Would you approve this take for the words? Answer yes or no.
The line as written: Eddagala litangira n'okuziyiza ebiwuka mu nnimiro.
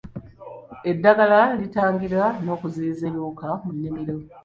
yes